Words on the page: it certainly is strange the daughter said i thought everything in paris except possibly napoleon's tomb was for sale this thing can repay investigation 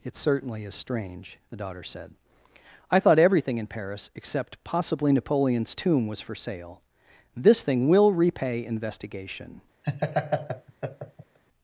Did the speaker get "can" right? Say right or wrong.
wrong